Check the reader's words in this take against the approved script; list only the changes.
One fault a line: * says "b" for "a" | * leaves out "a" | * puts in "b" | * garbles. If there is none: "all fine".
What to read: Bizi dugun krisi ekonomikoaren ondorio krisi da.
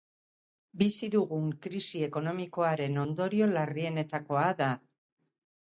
* says "larrienetakoa" for "krisi"